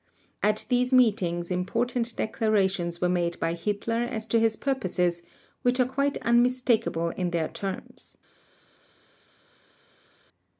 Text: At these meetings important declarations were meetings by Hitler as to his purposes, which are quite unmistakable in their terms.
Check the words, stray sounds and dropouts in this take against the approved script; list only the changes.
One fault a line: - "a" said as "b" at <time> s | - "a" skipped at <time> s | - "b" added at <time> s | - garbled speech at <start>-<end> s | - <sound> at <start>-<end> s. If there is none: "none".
- "meetings" said as "made" at 3.1 s